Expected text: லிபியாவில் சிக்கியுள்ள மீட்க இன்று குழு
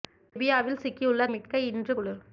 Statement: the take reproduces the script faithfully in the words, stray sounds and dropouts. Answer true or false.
false